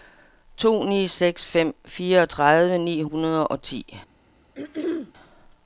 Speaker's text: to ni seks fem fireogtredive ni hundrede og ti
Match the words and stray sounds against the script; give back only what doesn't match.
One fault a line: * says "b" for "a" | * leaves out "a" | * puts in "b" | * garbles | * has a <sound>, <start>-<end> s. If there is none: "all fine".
* has a throat clearing, 4.5-5.1 s